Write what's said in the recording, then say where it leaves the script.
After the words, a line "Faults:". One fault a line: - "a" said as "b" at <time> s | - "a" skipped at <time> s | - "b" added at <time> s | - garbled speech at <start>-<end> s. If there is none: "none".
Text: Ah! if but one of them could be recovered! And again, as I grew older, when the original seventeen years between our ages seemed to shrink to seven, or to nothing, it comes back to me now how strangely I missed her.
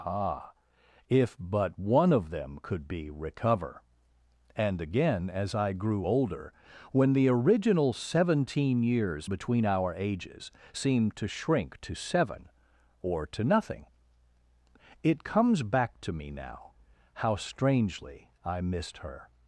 Ah! if but one of them could be recover! And again, as I grew older, when the original seventeen years between our ages seemed to shrink to seven, or to nothing, it comes back to me now how strangely I missed her.
Faults:
- "recovered" said as "recover" at 3.1 s